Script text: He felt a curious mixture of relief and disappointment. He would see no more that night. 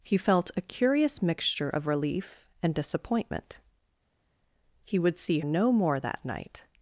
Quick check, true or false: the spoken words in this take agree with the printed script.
true